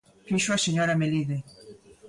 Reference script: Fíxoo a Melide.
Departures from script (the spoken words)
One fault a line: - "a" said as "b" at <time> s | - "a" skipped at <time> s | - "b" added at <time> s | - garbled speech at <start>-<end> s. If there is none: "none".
- "señora" added at 0.6 s